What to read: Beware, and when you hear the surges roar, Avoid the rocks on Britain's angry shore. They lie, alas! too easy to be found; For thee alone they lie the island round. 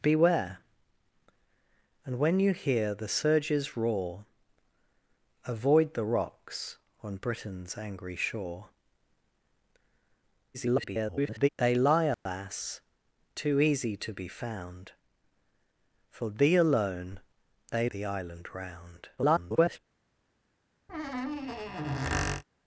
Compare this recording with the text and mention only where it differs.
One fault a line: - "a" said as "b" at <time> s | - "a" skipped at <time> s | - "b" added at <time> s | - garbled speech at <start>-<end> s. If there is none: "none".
- garbled speech at 10.5-11.5 s
- "lie" skipped at 17.9 s
- garbled speech at 19.2-19.8 s